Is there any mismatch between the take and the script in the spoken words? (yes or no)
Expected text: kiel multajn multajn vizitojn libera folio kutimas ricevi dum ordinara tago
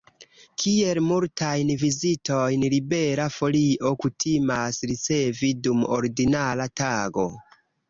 yes